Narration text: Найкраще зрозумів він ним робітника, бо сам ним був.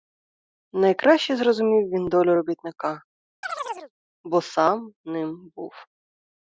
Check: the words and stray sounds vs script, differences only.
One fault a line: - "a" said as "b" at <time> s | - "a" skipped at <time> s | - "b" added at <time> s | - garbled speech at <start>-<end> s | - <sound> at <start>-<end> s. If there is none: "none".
- "ним" said as "долю" at 2.1 s
- chirp at 3.4-3.9 s